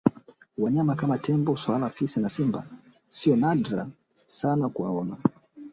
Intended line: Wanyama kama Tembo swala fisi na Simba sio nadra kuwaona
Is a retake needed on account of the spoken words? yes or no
yes